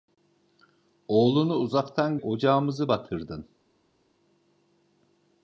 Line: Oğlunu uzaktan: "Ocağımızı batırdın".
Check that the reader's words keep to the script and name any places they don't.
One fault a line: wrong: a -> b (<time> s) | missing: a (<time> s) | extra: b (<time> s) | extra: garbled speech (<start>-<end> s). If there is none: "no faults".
no faults